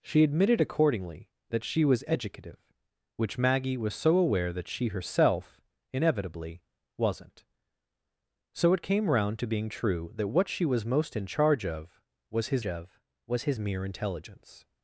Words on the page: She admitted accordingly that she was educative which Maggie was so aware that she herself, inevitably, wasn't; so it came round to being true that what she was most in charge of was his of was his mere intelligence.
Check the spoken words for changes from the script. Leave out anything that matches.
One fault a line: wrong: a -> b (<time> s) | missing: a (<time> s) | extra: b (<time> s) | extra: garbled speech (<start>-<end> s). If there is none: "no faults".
no faults